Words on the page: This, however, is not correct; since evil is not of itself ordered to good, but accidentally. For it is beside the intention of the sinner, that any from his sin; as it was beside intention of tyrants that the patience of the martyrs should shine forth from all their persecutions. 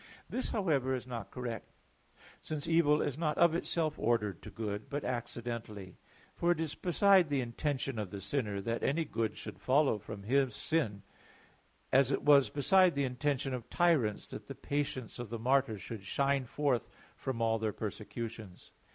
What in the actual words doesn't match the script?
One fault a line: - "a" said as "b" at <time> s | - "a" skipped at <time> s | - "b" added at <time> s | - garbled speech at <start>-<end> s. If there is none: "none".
- "good should follow" added at 9.1 s
- "the" added at 12.9 s